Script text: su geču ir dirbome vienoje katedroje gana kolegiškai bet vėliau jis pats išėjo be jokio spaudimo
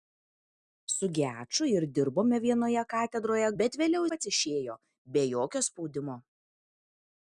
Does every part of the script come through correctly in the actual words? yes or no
no